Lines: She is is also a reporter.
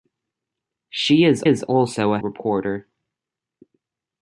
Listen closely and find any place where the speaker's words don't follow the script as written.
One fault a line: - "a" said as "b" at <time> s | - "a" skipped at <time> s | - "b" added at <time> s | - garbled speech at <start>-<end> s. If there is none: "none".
none